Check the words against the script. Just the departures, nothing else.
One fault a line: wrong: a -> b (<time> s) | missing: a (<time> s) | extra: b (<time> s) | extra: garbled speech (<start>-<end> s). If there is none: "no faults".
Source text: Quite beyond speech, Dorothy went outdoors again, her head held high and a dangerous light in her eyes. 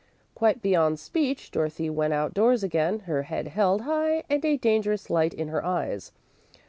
no faults